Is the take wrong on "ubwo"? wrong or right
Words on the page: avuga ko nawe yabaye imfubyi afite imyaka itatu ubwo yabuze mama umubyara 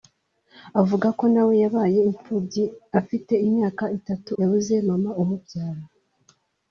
wrong